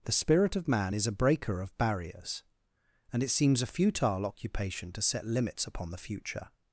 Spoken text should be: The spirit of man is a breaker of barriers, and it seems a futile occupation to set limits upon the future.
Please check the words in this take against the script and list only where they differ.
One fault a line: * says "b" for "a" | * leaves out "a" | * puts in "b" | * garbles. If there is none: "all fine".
all fine